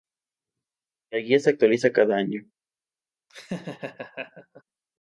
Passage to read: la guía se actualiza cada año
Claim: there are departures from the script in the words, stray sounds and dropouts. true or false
true